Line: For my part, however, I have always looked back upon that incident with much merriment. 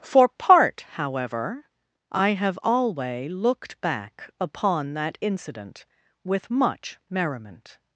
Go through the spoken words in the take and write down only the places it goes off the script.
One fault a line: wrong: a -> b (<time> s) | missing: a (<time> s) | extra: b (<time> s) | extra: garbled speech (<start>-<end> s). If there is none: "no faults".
missing: my (0.3 s)
wrong: always -> alway (2.6 s)